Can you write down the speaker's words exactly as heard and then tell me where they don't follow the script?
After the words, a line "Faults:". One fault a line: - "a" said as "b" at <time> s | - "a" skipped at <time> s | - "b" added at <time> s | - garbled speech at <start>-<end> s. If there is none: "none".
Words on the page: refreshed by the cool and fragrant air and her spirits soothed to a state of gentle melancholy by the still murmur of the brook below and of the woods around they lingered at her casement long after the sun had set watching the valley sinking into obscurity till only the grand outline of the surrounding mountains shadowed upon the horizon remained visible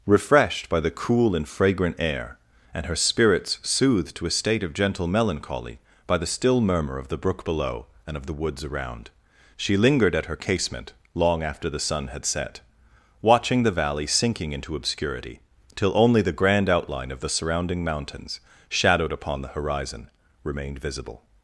refreshed by the cool and fragrant air and her spirits soothed to a state of gentle melancholy by the still murmur of the brook below and of the woods around she lingered at her casement long after the sun had set watching the valley sinking into obscurity till only the grand outline of the surrounding mountains shadowed upon the horizon remained visible
Faults:
- "they" said as "she" at 9.6 s